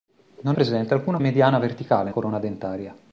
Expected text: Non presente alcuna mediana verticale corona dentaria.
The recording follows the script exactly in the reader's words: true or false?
true